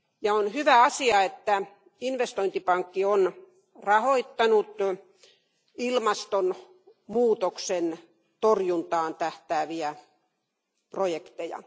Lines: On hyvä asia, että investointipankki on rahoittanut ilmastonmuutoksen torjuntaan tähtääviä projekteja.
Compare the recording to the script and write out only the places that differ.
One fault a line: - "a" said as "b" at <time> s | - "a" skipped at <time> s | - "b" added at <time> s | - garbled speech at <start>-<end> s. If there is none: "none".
none